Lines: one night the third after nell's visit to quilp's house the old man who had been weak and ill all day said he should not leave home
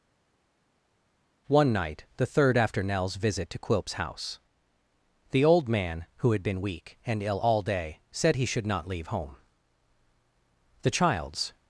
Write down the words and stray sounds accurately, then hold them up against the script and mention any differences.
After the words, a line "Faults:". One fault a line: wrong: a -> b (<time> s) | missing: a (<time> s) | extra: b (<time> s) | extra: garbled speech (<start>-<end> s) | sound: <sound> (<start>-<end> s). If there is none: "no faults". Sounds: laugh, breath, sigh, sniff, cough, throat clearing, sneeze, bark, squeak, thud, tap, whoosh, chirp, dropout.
one night the third after nell's visit to quilp's house the old man who had been weak and ill all day said he should not leave home the child's
Faults:
extra: the child's (10.8 s)